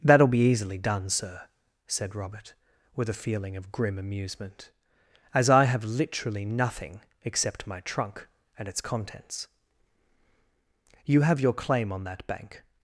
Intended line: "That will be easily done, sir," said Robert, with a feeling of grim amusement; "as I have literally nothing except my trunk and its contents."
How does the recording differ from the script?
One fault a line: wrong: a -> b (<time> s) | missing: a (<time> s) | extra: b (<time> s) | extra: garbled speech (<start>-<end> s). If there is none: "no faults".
extra: You have your claim on that bank (11.0 s)